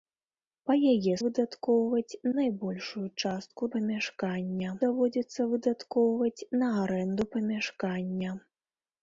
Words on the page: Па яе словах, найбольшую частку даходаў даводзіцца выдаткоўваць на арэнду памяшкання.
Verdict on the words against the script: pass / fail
fail